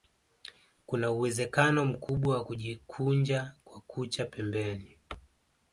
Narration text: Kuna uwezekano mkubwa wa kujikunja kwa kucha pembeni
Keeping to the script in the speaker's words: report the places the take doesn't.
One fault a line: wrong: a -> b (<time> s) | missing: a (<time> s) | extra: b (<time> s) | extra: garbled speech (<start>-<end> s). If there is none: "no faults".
no faults